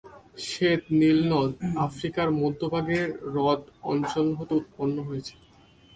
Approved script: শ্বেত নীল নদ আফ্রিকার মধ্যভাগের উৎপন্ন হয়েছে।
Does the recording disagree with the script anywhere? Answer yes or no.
yes